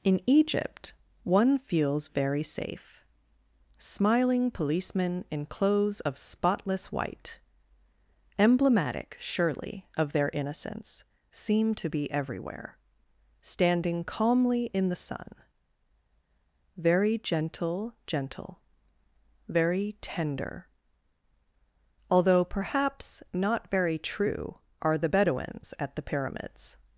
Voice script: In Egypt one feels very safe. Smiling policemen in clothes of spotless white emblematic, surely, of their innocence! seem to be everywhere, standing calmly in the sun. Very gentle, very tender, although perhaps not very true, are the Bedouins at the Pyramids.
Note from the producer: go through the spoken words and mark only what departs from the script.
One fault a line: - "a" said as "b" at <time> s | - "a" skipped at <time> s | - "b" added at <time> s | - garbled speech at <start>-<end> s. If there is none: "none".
- "gentle" added at 18.1 s